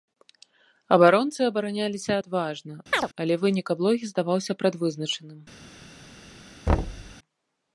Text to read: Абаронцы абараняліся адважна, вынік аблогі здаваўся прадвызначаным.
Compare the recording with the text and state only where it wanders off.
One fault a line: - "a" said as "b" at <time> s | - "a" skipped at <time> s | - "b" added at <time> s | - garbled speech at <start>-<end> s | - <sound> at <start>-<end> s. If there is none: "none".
- chirp at 2.9-3.1 s
- "але" added at 3.2 s
- thud at 6.7-7.2 s